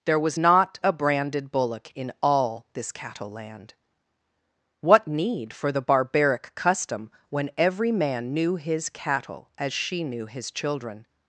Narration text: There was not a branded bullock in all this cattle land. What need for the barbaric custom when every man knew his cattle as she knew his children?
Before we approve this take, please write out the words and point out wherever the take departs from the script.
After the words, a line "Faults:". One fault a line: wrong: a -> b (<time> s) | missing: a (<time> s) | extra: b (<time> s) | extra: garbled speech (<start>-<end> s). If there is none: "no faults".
There was not a branded bullock in all this cattle land. What need for the barbaric custom when every man knew his cattle as she knew his children?
Faults:
no faults